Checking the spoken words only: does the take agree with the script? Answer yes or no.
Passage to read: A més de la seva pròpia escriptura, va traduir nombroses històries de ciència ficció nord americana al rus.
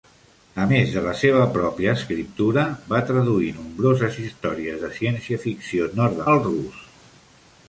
no